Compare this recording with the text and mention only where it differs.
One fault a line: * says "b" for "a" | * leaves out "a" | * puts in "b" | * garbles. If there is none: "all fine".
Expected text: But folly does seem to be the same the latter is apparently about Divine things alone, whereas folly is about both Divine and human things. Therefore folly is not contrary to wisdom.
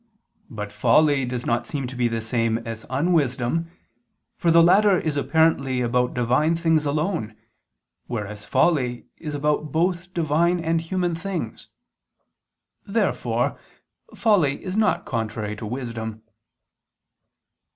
* puts in "not"
* puts in "as unwisdom for"